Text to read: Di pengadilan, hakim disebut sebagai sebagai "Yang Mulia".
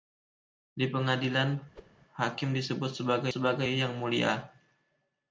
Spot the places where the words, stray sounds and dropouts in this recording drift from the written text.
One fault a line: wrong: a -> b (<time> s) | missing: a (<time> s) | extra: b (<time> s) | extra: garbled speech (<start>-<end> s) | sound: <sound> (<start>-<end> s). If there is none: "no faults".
sound: whoosh (1.7-1.9 s)